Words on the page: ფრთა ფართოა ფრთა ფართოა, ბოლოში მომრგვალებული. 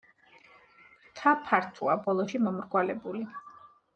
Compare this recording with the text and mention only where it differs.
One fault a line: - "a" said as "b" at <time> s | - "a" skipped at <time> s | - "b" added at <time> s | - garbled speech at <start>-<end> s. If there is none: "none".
- "ფრთა ფართოა" skipped at 2.0 s